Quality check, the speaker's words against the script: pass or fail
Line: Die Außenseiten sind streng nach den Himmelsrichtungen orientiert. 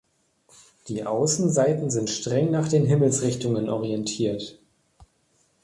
pass